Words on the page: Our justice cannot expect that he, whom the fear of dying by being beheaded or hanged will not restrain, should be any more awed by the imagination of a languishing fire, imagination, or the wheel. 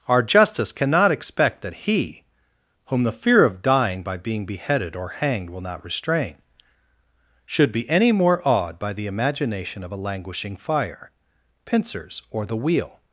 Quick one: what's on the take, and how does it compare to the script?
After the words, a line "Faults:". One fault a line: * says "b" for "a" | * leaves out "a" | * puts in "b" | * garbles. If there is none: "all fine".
Our justice cannot expect that he, whom the fear of dying by being beheaded or hanged will not restrain, should be any more awed by the imagination of a languishing fire, pincers, or the wheel.
Faults:
* says "pincers" for "imagination"